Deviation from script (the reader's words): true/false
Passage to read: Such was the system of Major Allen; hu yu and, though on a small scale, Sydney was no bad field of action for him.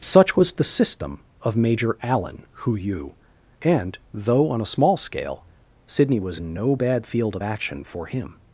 false